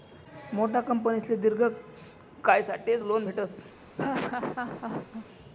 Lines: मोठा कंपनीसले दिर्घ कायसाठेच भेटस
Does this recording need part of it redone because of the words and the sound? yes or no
yes